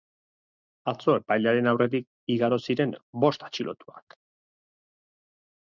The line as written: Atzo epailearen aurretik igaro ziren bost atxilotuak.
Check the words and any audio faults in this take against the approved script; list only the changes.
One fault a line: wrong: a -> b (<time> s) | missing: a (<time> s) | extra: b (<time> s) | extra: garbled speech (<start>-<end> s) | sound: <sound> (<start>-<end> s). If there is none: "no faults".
no faults